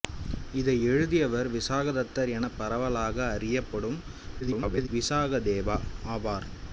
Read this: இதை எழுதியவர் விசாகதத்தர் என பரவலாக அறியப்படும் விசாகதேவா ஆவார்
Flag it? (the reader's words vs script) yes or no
yes